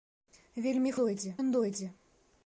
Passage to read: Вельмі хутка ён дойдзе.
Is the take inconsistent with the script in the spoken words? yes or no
yes